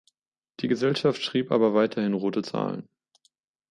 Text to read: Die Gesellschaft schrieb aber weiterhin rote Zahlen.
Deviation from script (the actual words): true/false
false